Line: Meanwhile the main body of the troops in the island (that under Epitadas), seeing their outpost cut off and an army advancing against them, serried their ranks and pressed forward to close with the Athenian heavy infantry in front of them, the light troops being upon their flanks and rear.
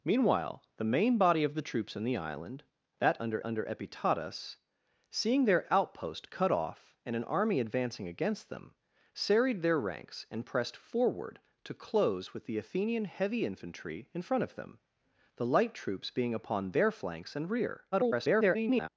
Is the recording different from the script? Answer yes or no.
yes